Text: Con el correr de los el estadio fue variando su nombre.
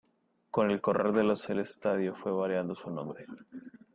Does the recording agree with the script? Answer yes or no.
yes